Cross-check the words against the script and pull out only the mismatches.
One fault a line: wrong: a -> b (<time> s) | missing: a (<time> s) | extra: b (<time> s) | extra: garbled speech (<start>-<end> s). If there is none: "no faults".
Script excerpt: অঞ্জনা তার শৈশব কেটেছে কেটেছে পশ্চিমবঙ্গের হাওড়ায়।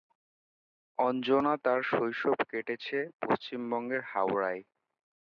missing: কেটেছে (3.0 s)